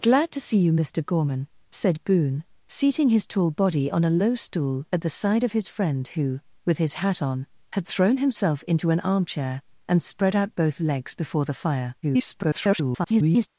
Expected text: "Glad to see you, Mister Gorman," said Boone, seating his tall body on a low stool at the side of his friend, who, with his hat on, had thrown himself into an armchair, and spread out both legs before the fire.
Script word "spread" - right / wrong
right